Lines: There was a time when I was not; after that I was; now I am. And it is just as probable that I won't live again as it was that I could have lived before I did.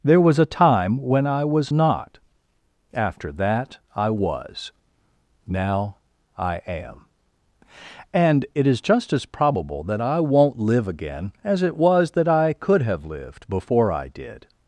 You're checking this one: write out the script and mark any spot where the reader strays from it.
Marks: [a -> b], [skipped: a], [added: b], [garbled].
There was a time when I was not; after that I was; now I am. And it is just as probable that I won't live again as it was that I could have lived before I did.